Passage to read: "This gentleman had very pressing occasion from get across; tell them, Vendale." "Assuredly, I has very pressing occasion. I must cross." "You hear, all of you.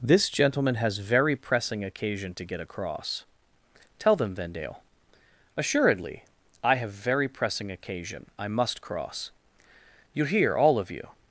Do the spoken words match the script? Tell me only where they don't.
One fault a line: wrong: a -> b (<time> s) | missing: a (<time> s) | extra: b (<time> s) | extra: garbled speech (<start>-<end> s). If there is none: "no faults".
wrong: had -> has (0.8 s)
wrong: from -> to (2.3 s)
wrong: has -> have (6.8 s)